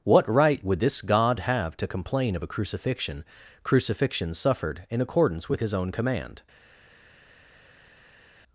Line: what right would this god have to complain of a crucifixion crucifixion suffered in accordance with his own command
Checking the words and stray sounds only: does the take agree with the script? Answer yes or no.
yes